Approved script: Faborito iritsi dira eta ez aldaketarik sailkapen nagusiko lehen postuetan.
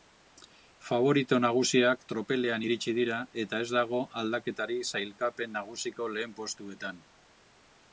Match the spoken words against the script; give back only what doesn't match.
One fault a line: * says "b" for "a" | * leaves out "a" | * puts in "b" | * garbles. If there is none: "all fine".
* puts in "nagusiak tropelean"
* puts in "dago"